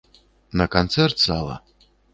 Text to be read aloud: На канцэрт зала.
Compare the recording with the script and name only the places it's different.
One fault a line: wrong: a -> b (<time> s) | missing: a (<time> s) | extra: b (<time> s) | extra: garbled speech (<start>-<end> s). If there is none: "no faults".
no faults